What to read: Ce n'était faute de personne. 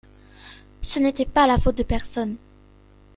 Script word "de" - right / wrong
right